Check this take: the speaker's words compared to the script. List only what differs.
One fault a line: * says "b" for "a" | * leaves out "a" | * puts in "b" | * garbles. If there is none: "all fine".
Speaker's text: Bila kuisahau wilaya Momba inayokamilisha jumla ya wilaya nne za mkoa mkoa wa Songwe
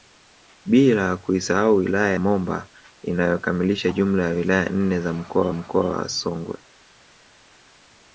all fine